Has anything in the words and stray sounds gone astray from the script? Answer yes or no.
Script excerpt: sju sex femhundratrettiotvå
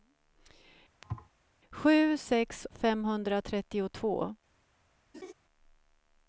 yes